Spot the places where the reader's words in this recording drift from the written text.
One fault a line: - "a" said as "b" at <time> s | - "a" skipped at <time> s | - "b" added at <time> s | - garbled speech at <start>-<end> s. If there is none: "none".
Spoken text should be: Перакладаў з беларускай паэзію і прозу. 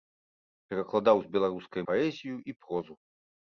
none